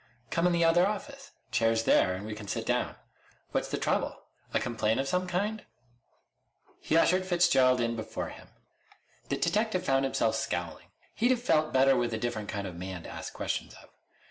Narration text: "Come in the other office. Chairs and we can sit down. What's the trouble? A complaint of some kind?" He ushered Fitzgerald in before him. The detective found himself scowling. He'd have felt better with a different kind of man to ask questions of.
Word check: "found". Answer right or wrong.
right